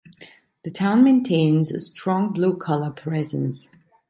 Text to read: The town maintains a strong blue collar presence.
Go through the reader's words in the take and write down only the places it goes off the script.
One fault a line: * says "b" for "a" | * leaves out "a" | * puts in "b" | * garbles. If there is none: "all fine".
all fine